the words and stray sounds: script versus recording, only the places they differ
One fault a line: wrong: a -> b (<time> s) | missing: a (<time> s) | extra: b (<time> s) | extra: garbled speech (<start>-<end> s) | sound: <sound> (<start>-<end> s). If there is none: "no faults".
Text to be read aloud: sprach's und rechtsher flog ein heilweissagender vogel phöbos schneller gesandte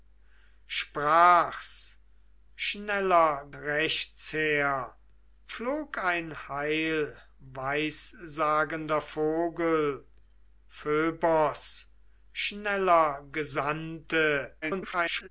wrong: und -> schneller (2.5 s)
extra: garbled speech (14.6-15.3 s)